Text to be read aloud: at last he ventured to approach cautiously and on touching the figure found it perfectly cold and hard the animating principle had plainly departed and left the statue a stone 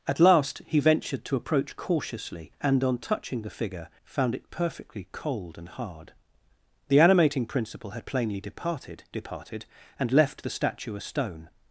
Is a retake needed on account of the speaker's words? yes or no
yes